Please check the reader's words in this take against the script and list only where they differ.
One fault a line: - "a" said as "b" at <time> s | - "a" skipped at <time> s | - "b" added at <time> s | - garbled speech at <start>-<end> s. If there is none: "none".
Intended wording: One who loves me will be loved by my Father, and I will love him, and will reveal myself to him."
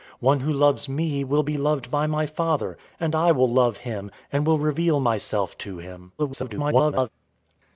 - garbled speech at 6.2-7.1 s